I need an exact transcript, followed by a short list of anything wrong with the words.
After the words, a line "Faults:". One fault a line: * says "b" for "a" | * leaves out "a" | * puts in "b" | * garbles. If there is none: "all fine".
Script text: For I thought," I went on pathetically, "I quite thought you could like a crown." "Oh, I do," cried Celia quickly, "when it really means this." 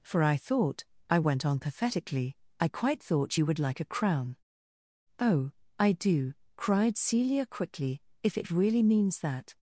For I thought," I went on pathetically, "I quite thought you would like a crown." "Oh, I do," cried Celia quickly, "if it really means that."
Faults:
* says "would" for "could"
* says "if" for "when"
* says "that" for "this"